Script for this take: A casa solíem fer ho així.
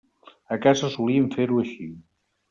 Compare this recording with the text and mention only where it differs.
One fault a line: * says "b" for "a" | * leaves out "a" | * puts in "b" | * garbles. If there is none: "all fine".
all fine